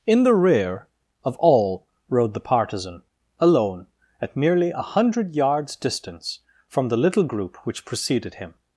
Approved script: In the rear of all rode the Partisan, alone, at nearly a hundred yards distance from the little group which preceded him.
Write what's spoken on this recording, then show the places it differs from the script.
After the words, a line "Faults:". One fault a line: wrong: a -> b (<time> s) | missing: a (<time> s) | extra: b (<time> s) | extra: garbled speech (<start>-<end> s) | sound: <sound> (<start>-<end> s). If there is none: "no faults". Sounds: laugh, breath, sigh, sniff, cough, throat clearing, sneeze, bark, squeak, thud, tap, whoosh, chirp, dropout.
In the rear of all rode the Partisan, alone, at merely a hundred yards distance from the little group which preceded him.
Faults:
wrong: nearly -> merely (4.4 s)